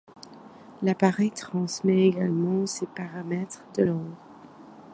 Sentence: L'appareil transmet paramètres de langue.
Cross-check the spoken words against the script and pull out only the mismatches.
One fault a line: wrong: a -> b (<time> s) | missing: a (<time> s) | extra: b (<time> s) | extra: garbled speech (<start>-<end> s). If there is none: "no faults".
extra: également ses (2.1 s)